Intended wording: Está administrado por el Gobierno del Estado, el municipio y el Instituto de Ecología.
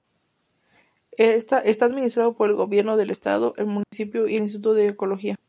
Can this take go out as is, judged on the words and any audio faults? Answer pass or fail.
fail